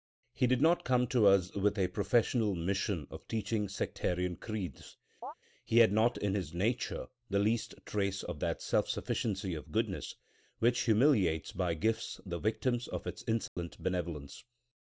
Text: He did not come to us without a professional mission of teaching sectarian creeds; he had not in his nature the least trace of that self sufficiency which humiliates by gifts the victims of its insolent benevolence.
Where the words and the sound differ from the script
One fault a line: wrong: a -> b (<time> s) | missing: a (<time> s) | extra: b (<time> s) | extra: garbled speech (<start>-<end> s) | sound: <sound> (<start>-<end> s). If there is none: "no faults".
wrong: without -> with (1.5 s)
sound: chirp (5.2-5.3 s)
extra: of goodness (9.5 s)
sound: dropout (13.5-13.6 s)